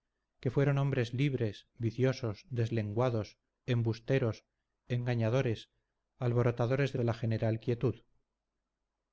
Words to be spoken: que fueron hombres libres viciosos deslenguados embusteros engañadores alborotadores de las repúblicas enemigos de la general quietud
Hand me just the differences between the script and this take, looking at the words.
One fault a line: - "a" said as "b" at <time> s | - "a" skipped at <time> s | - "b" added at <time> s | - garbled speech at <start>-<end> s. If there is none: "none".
- "las repúblicas enemigos" skipped at 7.0 s